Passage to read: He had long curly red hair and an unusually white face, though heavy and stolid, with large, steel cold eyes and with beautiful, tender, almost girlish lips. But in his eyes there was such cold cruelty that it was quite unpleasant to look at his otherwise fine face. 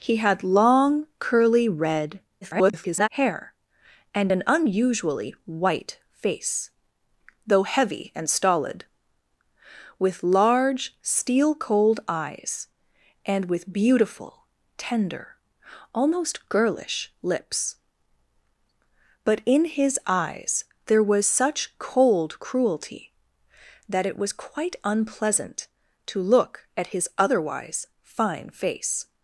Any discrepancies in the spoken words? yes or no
yes